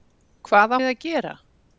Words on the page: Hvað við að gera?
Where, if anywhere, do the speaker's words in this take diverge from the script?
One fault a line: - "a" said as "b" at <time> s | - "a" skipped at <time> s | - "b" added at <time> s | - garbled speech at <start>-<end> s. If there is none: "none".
none